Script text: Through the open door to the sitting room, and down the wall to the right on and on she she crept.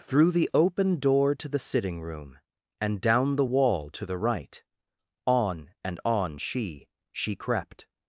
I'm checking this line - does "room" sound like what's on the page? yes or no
yes